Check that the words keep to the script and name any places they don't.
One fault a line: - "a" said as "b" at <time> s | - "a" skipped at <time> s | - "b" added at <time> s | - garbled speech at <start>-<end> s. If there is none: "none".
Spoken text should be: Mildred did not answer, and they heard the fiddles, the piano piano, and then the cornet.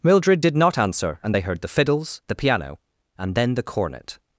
- "piano" skipped at 2.8 s